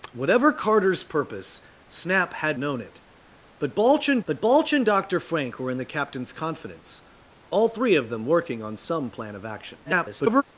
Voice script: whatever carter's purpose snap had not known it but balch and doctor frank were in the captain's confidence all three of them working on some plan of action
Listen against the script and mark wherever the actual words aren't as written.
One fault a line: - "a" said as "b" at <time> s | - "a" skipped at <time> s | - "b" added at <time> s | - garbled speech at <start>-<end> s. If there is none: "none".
- "not" skipped at 2.6 s
- "but balch and" added at 4.3 s
- garbled speech at 9.8-10.4 s